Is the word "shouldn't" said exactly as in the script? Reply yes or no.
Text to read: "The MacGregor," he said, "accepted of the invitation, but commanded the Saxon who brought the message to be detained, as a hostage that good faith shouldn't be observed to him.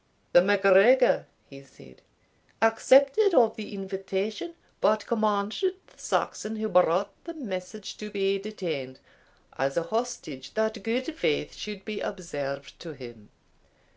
no